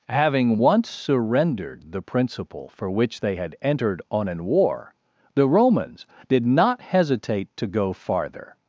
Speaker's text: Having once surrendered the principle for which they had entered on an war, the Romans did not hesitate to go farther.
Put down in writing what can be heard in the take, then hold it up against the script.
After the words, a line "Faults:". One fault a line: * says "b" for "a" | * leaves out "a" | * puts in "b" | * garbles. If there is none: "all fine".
Having once surrendered the principle for which they had entered on an war, the Romans did not hesitate to go farther.
Faults:
all fine